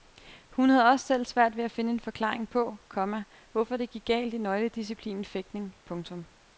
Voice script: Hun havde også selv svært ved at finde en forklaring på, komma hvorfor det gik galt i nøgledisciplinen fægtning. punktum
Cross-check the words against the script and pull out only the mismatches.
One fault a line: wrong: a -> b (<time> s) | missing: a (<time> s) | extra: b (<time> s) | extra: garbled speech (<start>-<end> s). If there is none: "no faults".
no faults